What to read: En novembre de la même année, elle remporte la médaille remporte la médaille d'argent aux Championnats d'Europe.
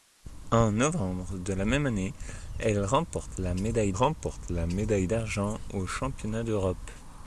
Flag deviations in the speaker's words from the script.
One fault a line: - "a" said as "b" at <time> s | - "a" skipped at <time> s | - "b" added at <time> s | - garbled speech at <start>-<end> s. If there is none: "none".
none